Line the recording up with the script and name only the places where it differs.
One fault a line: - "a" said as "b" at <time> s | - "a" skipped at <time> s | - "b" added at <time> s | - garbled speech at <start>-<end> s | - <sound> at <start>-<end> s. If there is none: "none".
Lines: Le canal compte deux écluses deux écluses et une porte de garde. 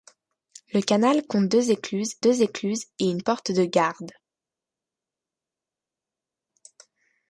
none